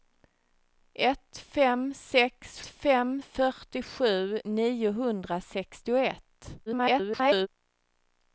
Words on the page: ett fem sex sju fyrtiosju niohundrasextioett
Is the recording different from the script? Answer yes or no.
yes